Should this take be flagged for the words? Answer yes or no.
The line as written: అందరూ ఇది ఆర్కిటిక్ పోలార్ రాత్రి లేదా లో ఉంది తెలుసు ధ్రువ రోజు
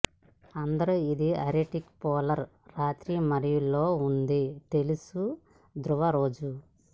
yes